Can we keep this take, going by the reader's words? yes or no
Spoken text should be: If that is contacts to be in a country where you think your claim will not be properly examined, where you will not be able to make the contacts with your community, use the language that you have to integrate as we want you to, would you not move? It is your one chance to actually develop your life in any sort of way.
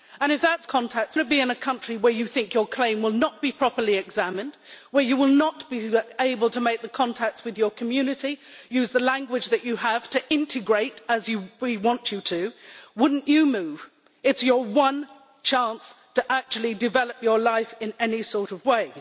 yes